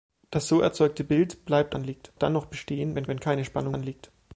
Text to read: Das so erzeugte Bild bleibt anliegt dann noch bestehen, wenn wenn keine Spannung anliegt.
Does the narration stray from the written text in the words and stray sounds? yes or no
no